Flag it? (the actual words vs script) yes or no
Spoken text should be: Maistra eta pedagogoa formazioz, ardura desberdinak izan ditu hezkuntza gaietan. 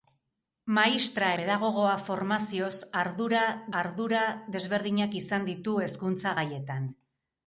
yes